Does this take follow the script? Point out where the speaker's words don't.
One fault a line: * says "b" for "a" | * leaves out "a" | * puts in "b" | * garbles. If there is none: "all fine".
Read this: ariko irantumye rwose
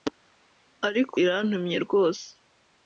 all fine